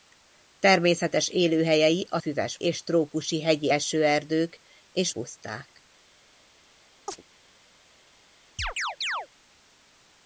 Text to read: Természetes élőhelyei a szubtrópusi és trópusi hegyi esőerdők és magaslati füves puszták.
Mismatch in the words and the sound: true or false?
true